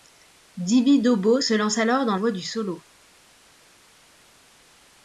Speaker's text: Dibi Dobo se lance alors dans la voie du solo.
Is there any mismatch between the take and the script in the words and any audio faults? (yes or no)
yes